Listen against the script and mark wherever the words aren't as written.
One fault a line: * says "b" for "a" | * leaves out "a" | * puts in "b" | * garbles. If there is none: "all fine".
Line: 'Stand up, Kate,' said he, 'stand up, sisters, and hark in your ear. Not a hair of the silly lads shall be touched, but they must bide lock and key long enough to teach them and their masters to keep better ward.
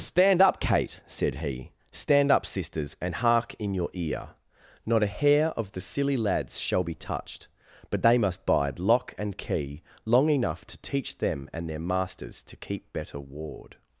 all fine